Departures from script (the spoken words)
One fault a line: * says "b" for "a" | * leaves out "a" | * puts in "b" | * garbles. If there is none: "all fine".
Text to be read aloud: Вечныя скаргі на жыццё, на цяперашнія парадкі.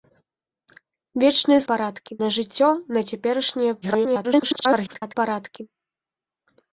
* says "парадкі" for "скаргі"
* garbles